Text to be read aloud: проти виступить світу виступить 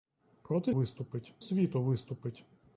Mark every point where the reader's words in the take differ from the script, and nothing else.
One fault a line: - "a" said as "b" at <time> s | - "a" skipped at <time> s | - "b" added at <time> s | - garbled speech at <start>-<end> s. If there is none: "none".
none